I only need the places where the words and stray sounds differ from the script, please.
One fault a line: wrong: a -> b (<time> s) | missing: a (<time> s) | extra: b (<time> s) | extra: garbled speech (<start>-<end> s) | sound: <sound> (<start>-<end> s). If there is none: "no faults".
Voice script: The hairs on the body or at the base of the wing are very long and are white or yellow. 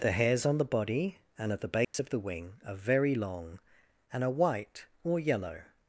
wrong: or -> and (1.4 s)
sound: dropout (1.8-1.9 s)